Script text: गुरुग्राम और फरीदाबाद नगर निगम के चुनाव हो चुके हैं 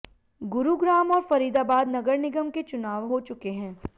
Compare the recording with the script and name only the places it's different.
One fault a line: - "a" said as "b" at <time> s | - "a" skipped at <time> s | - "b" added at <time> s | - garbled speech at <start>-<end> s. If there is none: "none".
none